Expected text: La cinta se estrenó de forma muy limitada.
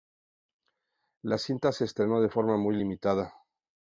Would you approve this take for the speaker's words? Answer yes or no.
yes